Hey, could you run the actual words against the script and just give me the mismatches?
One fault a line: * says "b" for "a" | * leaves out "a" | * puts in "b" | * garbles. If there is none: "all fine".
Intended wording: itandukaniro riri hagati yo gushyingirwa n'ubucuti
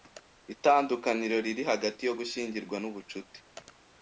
all fine